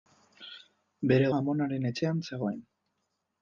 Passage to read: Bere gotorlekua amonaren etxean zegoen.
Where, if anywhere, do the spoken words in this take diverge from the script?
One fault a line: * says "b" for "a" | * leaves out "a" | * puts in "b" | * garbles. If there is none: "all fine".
* leaves out "gotorlekua"